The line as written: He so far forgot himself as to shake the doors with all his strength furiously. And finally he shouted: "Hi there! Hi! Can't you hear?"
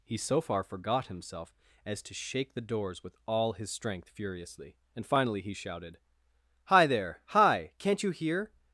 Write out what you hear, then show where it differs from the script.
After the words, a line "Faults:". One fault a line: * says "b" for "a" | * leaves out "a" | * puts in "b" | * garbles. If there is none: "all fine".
He so far forgot himself as to shake the doors with all his strength furiously. And finally he shouted: "Hi there! Hi! Can't you hear?"
Faults:
all fine